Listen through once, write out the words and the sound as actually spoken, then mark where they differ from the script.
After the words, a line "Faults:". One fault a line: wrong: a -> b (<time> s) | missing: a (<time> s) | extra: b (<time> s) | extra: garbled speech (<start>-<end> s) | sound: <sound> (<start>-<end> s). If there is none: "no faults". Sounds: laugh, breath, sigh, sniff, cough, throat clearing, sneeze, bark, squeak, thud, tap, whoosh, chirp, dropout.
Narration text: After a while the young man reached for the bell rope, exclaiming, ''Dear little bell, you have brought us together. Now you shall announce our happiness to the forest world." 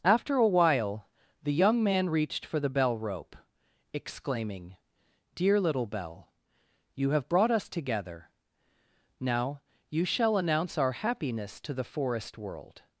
After a while the young man reached for the bell rope, exclaiming, ''Dear little bell, you have brought us together. Now you shall announce our happiness to the forest world."
Faults:
no faults